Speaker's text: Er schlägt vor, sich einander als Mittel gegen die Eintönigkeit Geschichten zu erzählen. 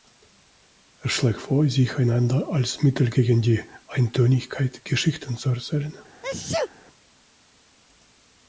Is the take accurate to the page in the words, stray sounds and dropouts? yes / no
no